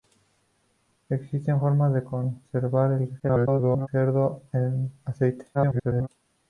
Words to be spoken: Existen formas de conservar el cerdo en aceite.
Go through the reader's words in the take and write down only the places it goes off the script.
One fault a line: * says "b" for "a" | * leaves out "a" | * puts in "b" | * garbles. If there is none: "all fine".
* garbles
* garbles